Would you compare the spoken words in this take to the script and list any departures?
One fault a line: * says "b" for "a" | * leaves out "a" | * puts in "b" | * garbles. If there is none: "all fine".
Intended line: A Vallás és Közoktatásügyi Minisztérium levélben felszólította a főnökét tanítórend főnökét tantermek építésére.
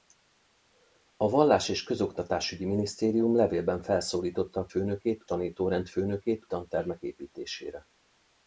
all fine